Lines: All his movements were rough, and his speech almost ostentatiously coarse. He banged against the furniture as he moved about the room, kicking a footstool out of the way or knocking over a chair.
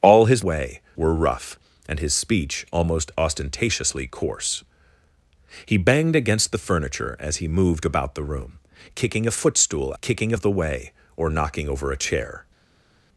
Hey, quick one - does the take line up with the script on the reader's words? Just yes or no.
no